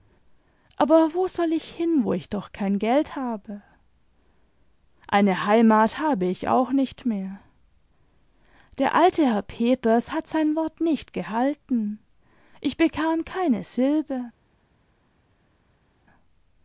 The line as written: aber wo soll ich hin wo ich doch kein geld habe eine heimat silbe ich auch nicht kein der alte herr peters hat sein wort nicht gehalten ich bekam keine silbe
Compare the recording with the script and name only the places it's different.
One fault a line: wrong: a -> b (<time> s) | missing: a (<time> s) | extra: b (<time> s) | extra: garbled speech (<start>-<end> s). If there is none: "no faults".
wrong: silbe -> habe (6.0 s)
wrong: kein -> mehr (7.0 s)